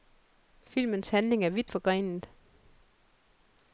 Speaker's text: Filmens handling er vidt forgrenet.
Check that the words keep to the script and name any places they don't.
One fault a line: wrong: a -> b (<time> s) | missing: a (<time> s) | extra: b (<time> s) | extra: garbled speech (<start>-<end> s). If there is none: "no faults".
no faults